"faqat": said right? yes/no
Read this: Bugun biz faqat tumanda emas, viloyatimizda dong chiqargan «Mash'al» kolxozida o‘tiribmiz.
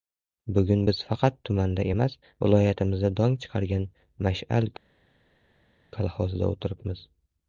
yes